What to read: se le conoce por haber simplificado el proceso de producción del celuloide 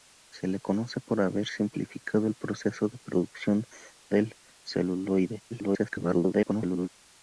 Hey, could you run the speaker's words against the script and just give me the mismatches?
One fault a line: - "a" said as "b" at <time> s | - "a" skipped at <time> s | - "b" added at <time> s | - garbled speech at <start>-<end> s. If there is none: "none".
- garbled speech at 5.5-6.9 s